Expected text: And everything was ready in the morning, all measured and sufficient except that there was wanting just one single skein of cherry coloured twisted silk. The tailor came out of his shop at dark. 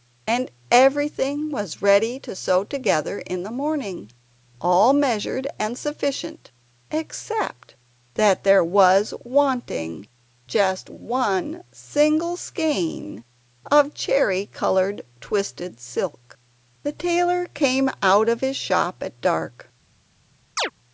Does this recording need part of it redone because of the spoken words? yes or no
yes